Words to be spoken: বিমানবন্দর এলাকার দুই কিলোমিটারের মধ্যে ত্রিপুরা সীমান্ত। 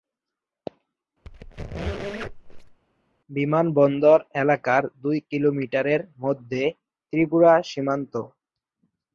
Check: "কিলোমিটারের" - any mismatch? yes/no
no